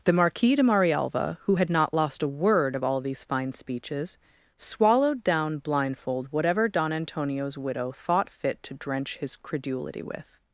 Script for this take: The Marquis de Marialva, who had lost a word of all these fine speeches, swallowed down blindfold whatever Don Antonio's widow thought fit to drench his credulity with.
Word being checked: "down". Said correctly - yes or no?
yes